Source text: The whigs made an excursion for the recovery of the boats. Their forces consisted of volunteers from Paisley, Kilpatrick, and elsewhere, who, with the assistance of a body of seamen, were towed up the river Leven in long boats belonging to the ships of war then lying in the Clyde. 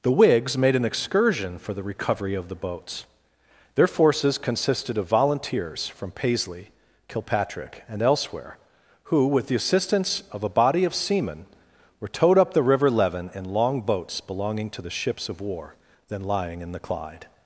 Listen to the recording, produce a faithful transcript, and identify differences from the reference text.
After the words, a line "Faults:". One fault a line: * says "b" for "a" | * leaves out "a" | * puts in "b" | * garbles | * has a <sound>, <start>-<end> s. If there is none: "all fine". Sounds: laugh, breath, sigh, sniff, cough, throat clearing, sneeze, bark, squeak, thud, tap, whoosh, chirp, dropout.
The whigs made an excursion for the recovery of the boats. Their forces consisted of volunteers from Paisley, Kilpatrick, and elsewhere, who, with the assistance of a body of seamen, were towed up the river Leven in long boats belonging to the ships of war then lying in the Clyde.
Faults:
all fine